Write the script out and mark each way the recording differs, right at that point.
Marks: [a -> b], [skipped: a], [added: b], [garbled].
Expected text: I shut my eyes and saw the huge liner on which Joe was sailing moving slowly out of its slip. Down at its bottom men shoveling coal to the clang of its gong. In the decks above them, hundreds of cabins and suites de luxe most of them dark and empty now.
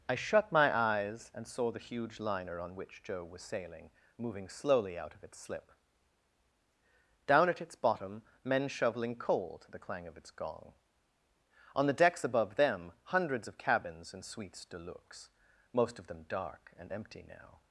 I shut my eyes and saw the huge liner on which Joe was sailing moving slowly out of its slip. Down at its bottom men shoveling coal to the clang of its gong. [In -> On] the decks above them, hundreds of cabins and suites de luxe most of them dark and empty now.